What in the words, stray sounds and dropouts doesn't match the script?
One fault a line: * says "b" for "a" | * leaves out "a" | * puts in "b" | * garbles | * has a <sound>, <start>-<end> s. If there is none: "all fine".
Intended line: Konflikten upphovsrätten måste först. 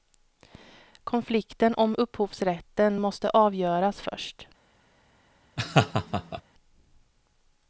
* puts in "om"
* puts in "avgöras"
* has a laugh, 5.6-6.4 s